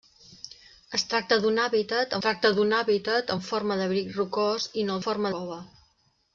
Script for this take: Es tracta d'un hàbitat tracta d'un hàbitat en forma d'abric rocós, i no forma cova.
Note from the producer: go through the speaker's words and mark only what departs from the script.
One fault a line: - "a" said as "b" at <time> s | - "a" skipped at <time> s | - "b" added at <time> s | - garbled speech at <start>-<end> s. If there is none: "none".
none